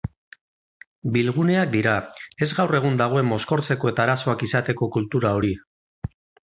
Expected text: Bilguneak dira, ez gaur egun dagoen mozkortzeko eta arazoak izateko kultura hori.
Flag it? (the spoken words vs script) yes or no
no